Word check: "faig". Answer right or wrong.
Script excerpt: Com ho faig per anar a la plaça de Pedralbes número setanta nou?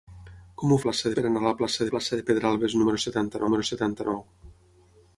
wrong